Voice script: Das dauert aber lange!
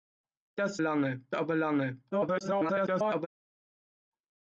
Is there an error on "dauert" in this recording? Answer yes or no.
yes